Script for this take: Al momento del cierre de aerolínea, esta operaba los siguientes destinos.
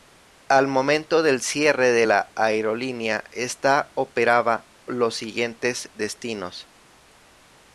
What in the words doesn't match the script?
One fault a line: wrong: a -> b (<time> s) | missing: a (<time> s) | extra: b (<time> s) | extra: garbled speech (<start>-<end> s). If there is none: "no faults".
extra: la (2.0 s)